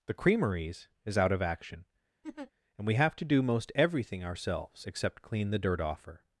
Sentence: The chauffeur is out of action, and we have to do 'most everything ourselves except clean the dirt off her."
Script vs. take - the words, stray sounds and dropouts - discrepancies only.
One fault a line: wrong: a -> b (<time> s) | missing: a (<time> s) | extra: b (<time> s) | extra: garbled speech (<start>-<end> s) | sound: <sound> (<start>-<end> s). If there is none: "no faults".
wrong: chauffeur -> creameries (0.1 s)
sound: laugh (2.2-2.5 s)